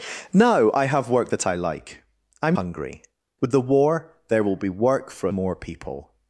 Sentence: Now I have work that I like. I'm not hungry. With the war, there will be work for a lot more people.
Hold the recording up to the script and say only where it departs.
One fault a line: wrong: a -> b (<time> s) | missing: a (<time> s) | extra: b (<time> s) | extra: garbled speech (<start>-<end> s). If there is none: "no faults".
missing: not (2.6 s)
missing: lot (5.3 s)